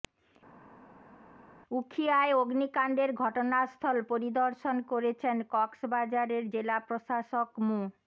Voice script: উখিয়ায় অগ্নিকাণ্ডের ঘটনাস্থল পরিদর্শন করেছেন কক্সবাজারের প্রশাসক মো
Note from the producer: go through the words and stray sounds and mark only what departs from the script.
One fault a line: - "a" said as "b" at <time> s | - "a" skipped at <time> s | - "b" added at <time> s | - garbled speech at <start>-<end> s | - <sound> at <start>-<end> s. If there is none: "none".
- "জেলা" added at 6.5 s